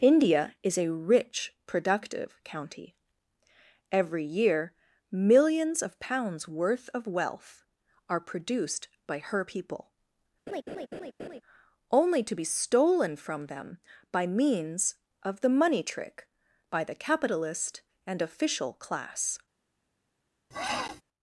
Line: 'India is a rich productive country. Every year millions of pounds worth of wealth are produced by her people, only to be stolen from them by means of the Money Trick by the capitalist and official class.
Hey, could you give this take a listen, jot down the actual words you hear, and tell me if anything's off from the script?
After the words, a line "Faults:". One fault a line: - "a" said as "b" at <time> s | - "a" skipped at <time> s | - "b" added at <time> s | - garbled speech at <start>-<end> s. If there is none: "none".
'India is a rich productive county. Every year millions of pounds worth of wealth are produced by her people, only to be stolen from them by means of the Money Trick by the capitalist and official class.
Faults:
- "country" said as "county" at 2.4 s